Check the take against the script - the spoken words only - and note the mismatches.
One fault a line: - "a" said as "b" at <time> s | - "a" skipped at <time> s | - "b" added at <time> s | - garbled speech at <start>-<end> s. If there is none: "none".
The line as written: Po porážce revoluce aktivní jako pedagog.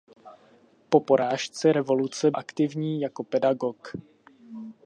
none